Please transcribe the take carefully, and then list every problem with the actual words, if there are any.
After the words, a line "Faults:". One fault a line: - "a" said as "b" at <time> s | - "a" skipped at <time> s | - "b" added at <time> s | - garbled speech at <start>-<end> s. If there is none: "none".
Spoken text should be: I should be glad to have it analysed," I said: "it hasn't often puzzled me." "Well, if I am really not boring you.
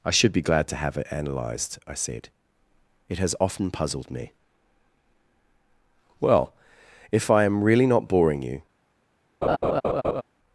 I should be glad to have it analysed," I said: "it has often puzzled me." "Well, if I am really not boring you.
Faults:
- "hasn't" said as "has" at 3.2 s